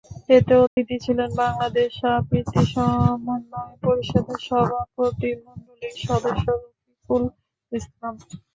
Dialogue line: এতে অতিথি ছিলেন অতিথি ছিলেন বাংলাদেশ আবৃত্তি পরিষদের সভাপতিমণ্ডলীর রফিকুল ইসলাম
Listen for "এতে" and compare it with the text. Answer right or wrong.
right